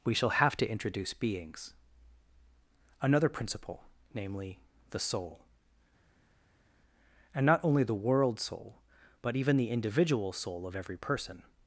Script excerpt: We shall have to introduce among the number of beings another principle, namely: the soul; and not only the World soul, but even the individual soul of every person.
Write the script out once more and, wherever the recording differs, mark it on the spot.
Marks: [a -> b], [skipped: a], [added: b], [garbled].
We shall have to introduce [skipped: among the number of] beings another principle, namely: the soul; and not only the World soul, but even the individual soul of every person.